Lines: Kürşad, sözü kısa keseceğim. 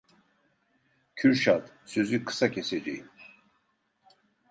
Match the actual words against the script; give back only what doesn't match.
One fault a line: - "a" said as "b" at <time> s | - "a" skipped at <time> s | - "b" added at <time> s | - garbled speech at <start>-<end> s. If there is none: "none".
none